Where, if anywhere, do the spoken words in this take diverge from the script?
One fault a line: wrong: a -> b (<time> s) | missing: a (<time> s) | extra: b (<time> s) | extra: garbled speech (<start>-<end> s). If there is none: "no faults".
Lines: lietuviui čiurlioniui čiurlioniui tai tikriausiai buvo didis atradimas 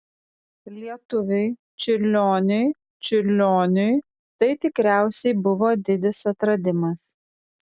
no faults